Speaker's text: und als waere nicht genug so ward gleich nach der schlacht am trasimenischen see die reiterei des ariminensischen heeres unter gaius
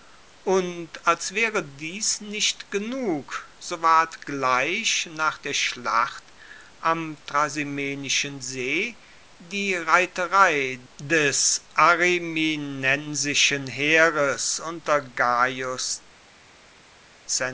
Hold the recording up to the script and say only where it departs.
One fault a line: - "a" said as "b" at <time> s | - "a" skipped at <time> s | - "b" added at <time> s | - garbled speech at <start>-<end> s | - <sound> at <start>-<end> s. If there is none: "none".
- "dies" added at 1.6 s